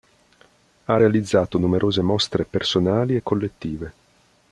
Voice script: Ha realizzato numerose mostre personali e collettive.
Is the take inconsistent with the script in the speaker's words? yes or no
no